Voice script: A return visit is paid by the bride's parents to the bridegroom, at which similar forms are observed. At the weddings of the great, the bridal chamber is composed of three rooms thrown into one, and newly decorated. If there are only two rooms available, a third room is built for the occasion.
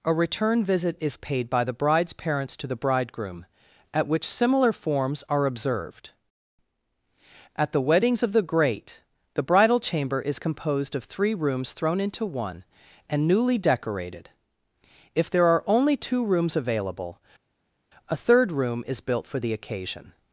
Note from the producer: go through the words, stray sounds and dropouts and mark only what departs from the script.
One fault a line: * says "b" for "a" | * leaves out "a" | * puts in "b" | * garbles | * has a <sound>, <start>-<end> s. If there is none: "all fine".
all fine